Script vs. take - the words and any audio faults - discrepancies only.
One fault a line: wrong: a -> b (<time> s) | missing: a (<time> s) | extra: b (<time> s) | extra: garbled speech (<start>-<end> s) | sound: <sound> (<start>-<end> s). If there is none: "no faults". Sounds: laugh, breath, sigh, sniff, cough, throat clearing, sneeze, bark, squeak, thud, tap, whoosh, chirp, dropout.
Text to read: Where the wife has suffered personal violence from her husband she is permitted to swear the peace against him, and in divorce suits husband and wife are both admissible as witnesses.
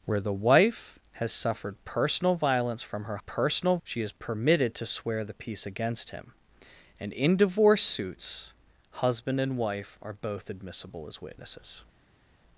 wrong: husband -> personal (3.3 s)